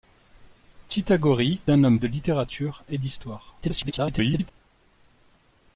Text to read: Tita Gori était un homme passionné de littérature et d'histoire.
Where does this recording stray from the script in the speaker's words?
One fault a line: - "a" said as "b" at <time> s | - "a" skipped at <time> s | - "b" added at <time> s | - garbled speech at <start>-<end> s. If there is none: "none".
- "était" skipped at 1.6 s
- "passionné" skipped at 2.0 s
- garbled speech at 3.6-4.5 s